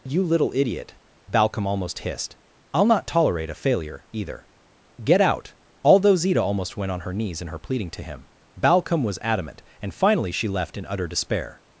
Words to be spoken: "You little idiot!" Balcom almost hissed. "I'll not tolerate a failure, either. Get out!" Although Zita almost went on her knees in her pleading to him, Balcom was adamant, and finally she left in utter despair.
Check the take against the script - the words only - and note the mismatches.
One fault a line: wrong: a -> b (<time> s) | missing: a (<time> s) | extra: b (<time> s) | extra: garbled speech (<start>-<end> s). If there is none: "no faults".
no faults